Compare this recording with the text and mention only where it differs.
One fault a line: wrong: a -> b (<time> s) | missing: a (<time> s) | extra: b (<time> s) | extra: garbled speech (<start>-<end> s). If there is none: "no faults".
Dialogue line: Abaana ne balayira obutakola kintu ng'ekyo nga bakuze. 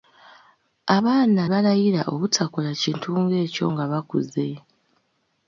missing: ne (1.4 s)